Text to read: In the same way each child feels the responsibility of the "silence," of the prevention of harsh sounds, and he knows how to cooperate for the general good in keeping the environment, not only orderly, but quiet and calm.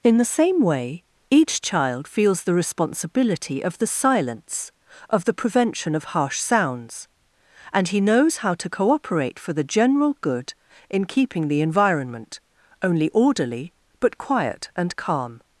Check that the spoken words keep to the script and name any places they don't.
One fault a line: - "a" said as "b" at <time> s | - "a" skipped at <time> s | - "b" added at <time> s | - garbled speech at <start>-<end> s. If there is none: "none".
- "not" skipped at 12.4 s